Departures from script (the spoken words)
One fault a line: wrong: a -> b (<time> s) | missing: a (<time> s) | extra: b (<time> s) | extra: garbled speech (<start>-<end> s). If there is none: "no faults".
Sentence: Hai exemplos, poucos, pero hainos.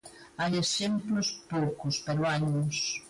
no faults